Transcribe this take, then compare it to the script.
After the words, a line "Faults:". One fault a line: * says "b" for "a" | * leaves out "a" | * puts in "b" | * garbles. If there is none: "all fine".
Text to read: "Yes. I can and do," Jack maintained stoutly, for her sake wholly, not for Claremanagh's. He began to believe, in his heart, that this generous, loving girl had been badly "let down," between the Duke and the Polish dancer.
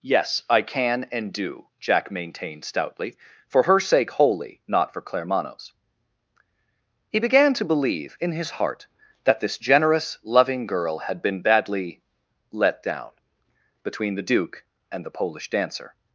"Yes. I can and do," Jack maintained stoutly, for her sake wholly, not for Claremanagh's. He began to believe, in his heart, that this generous, loving girl had been badly "let down," between the Duke and the Polish dancer.
Faults:
all fine